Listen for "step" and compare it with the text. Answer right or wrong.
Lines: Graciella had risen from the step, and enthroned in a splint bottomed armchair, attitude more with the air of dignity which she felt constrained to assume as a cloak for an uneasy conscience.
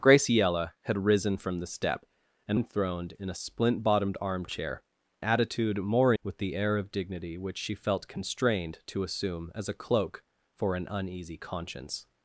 right